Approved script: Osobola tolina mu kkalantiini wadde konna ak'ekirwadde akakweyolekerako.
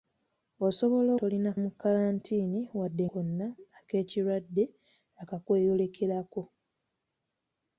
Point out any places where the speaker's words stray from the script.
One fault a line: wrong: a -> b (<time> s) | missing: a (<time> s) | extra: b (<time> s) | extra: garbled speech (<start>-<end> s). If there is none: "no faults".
no faults